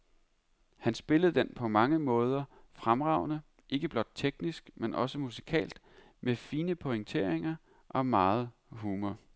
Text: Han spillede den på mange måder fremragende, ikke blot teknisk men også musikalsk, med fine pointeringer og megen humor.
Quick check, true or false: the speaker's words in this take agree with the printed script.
true